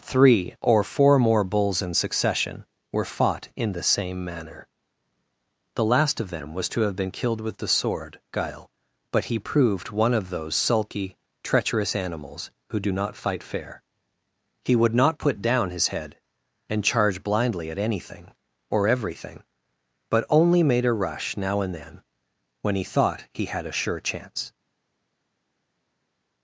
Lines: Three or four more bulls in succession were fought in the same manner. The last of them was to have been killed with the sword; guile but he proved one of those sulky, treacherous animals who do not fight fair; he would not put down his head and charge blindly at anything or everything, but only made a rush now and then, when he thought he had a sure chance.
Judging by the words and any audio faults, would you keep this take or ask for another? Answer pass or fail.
pass